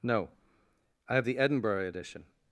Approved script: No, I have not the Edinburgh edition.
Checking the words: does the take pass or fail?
fail